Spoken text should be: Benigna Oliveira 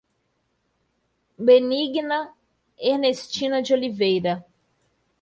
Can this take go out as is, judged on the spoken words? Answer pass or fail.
fail